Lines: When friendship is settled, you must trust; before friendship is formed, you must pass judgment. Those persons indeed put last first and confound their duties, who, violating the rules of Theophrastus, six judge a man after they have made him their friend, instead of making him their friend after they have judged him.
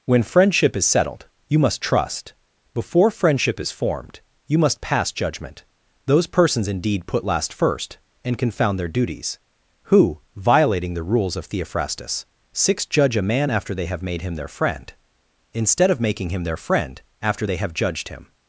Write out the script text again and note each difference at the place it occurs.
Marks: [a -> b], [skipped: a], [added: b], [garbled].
When friendship is settled, you must trust; before friendship is formed, you must pass judgment. Those persons indeed put last first and confound their duties, who, violating the rules of Theophrastus, six judge a man after they have made him their friend, instead of making him their friend after they have judged him.